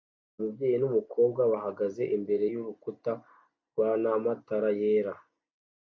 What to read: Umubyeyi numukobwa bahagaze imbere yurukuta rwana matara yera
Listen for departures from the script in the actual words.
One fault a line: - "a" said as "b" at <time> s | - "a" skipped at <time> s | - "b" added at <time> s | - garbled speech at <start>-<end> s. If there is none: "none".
none